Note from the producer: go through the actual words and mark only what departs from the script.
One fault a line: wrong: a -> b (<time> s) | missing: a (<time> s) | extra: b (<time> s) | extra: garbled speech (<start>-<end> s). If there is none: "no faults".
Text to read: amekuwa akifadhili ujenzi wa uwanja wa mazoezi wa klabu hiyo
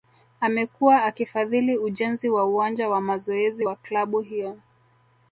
no faults